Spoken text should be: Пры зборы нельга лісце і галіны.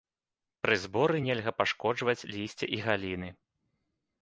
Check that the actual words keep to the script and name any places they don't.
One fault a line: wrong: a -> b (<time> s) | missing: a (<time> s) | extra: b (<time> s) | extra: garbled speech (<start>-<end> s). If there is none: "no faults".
extra: пашкоджваць (1.6 s)